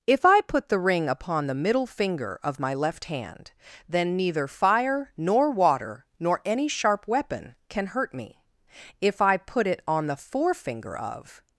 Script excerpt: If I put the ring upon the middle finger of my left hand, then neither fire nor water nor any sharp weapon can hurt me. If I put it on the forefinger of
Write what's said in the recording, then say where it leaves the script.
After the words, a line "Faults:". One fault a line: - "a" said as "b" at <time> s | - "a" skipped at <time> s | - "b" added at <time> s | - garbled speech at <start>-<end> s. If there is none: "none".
If I put the ring upon the middle finger of my left hand, then neither fire nor water nor any sharp weapon can hurt me. If I put it on the forefinger of
Faults:
none